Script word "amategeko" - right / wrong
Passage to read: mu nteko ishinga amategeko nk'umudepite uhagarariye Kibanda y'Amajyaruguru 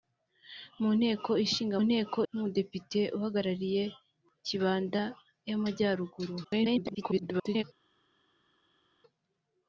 wrong